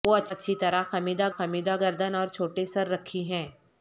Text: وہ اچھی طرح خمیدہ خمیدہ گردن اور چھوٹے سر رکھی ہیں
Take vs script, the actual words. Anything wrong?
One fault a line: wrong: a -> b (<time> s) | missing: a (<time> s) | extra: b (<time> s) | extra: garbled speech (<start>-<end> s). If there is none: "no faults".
no faults